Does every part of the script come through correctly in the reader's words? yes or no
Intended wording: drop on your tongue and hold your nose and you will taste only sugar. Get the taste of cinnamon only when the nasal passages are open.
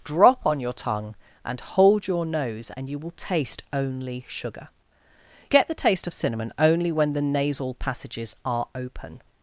yes